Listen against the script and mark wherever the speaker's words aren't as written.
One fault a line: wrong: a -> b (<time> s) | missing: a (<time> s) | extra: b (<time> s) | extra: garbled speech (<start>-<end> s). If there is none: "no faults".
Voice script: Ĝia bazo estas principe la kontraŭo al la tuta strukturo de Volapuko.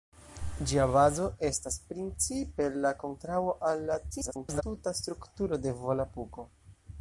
extra: garbled speech (4.1-4.6 s)